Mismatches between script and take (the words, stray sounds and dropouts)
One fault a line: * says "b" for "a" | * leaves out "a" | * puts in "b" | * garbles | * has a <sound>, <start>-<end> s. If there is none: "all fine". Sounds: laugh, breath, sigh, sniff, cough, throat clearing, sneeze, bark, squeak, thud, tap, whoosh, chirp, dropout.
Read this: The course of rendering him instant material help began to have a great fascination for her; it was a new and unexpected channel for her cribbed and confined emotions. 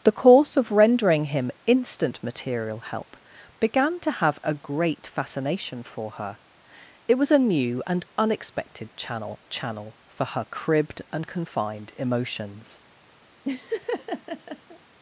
* puts in "channel"
* has a laugh, 13.4-14.8 s